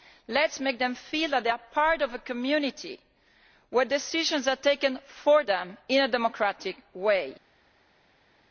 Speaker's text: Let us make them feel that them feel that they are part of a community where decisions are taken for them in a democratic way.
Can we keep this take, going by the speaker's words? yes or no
no